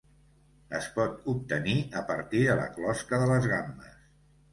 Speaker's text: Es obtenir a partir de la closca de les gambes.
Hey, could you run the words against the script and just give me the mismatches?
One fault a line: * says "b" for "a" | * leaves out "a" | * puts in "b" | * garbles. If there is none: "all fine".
* puts in "pot"